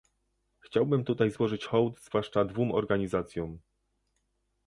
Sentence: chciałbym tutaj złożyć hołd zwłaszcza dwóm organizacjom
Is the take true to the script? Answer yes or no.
yes